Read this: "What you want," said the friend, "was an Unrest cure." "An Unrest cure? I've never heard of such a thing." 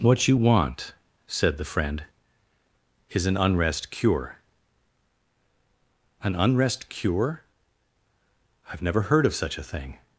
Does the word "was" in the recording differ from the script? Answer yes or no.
yes